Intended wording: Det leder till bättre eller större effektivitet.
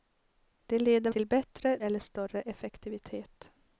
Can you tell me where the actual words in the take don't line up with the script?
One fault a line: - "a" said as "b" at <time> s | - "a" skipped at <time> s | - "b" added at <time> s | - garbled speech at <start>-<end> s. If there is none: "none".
none